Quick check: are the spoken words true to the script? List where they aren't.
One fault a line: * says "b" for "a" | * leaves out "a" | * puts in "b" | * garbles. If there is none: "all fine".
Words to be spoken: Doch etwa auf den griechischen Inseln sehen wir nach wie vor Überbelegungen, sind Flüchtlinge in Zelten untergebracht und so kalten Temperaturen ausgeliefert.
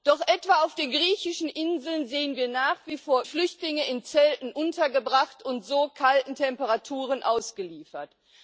* leaves out "Überbelegungen sind"